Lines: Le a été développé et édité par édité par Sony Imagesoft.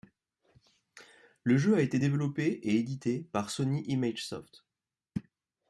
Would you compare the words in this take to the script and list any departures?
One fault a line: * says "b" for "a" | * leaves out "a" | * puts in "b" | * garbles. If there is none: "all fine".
* puts in "jeu"
* leaves out "édité par"